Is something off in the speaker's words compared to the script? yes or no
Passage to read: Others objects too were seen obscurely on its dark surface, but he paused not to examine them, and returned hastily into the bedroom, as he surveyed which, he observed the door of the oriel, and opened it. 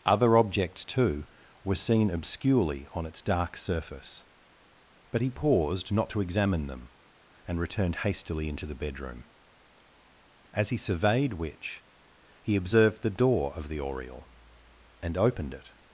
yes